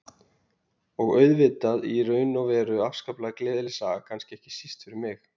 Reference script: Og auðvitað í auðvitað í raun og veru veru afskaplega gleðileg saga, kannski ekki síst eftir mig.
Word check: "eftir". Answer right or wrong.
wrong